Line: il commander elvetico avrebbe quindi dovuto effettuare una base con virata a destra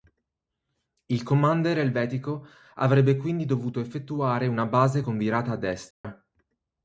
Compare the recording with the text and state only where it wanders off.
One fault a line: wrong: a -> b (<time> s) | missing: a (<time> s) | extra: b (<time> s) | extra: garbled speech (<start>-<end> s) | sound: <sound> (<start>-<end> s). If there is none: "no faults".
sound: dropout (5.9-6.0 s)